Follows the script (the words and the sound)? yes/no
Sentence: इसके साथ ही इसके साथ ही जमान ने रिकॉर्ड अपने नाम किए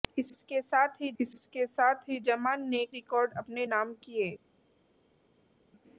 yes